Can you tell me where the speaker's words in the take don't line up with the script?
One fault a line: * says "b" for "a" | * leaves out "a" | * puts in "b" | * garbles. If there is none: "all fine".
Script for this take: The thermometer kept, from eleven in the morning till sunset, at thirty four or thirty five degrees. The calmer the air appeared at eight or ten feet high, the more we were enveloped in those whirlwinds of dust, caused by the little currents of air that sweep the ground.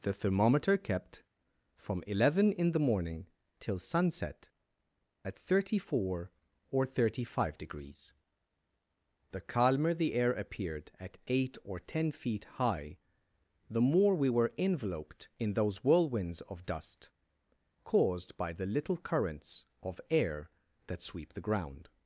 all fine